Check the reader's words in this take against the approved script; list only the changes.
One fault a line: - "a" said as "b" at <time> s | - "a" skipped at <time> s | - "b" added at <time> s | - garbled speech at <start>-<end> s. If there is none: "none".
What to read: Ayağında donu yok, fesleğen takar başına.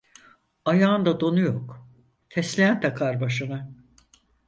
none